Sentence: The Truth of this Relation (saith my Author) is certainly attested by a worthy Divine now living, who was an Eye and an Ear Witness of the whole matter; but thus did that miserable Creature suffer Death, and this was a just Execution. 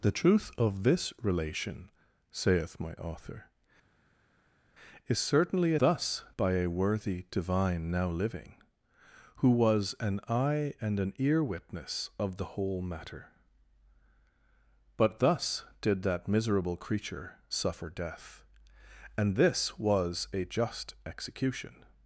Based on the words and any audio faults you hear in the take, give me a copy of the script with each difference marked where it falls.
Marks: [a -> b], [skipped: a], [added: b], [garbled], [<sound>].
The Truth of this Relation (saith my Author) is certainly [attested -> thus] by a worthy Divine now living, who was an Eye and an Ear Witness of the whole matter; but thus did that miserable Creature suffer Death, and this was a just Execution.